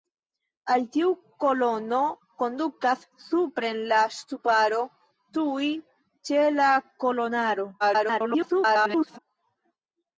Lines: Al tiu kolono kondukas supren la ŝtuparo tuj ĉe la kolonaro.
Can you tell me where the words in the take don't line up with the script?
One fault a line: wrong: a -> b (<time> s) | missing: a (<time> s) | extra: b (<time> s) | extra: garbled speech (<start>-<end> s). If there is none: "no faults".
extra: garbled speech (7.8-9.2 s)